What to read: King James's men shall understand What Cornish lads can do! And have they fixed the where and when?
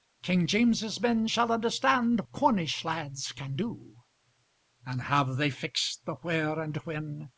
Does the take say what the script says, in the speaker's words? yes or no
no